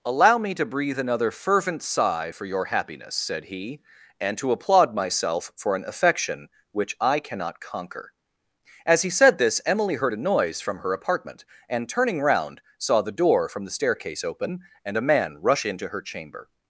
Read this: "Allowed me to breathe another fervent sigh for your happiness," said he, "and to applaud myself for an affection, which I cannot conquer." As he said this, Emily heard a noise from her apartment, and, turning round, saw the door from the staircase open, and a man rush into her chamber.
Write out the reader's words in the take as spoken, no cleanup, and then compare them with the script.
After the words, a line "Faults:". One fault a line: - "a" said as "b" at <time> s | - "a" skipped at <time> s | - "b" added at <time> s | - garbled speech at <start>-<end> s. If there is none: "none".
"Allow me to breathe another fervent sigh for your happiness," said he, "and to applaud myself for an affection, which I cannot conquer." As he said this, Emily heard a noise from her apartment, and, turning round, saw the door from the staircase open, and a man rush into her chamber.
Faults:
- "Allowed" said as "Allow" at 0.0 s